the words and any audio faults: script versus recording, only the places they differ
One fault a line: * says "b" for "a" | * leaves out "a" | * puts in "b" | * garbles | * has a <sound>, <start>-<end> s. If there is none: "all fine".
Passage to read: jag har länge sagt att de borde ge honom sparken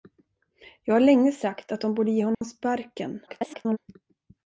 * has a dropout, 2.3-2.4 s
* garbles